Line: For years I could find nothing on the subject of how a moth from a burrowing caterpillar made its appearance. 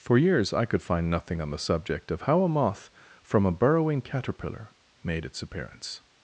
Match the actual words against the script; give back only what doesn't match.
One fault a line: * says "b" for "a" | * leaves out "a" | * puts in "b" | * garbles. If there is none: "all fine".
all fine